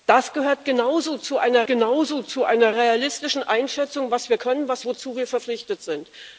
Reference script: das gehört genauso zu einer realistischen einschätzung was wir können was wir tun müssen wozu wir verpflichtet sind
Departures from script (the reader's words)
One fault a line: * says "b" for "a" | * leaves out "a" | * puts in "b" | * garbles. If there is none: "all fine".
* puts in "genauso zu einer"
* leaves out "wir tun müssen"